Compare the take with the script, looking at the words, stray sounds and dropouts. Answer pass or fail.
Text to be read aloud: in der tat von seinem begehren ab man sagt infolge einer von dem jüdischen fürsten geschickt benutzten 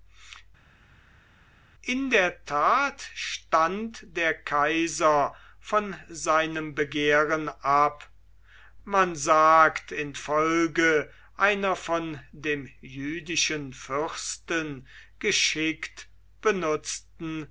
fail